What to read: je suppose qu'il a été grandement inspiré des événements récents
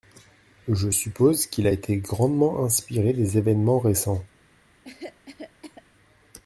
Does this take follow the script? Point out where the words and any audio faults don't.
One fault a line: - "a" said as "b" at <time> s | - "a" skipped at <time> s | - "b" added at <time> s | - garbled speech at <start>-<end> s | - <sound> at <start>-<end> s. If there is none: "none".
- cough at 4.8-5.8 s